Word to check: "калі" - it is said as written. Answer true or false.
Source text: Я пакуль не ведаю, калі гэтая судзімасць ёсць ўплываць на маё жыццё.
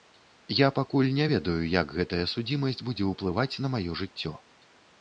false